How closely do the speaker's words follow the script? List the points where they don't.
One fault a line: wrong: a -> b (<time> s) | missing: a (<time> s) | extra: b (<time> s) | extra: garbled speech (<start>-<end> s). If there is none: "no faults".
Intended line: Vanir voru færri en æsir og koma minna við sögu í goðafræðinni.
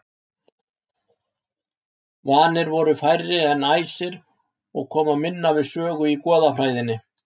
no faults